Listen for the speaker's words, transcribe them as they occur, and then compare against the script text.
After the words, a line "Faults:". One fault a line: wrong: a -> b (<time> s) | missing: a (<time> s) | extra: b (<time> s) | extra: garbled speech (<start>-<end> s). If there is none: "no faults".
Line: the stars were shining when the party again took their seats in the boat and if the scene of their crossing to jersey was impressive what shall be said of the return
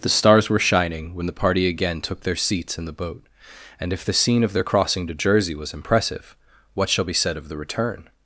the stars were shining when the party again took their seats in the boat and if the scene of their crossing to jersey was impressive what shall be said of the return
Faults:
no faults